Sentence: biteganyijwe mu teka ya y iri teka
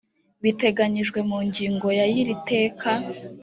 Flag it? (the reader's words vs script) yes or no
yes